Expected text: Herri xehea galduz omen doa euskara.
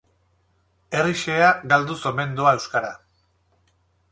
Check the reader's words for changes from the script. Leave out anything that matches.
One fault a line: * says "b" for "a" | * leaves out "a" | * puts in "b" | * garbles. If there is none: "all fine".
all fine